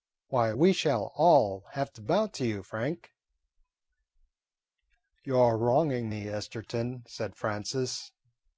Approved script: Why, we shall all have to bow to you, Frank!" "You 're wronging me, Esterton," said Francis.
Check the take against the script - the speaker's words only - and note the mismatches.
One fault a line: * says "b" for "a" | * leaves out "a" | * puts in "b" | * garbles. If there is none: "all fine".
all fine